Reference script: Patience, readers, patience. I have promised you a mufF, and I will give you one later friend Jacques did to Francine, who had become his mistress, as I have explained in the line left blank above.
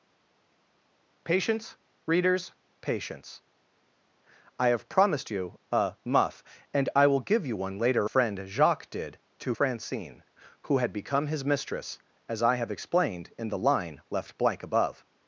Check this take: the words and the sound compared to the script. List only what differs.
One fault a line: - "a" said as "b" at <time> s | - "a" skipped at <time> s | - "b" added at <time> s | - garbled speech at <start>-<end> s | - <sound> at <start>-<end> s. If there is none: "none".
none